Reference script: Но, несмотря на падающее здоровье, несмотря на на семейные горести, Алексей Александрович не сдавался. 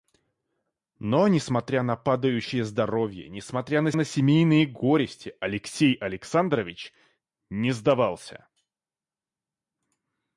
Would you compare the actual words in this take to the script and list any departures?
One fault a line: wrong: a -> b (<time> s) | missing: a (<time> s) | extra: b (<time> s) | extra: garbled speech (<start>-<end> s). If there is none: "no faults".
no faults